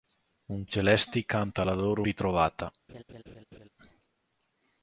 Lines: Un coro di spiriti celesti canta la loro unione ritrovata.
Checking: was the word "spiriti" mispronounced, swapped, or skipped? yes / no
yes